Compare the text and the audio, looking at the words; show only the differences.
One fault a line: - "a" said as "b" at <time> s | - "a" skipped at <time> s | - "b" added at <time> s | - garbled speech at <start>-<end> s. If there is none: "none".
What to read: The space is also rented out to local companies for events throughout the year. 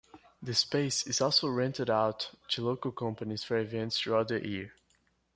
none